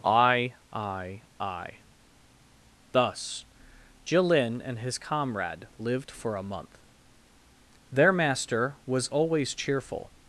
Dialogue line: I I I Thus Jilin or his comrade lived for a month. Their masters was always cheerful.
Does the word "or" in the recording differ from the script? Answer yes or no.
yes